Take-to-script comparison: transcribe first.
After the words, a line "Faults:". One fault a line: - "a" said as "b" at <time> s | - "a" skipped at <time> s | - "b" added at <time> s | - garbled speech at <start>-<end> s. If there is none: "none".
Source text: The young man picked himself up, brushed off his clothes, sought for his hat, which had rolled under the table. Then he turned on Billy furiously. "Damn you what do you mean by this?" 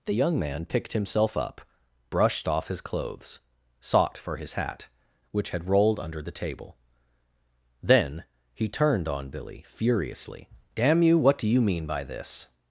The young man picked himself up, brushed off his clothes, sought for his hat, which had rolled under the table. Then he turned on Billy furiously. "Damn you what do you mean by this?"
Faults:
none